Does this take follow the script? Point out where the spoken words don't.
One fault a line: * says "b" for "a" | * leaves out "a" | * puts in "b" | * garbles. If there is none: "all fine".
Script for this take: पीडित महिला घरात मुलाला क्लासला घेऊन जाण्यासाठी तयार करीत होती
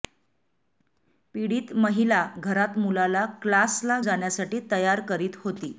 * leaves out "घेऊन"